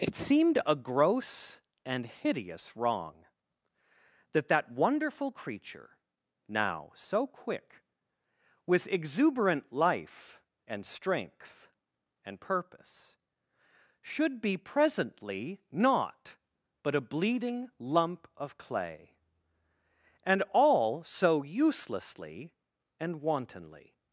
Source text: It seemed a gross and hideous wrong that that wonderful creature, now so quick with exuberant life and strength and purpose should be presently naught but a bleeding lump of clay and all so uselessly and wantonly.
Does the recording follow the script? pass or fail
pass